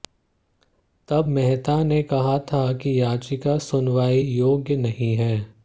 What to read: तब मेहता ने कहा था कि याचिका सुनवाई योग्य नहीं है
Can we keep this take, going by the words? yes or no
yes